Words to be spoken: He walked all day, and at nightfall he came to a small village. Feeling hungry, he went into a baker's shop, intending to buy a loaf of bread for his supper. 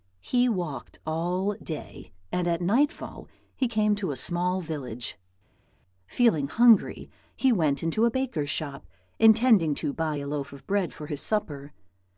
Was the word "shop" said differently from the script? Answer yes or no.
no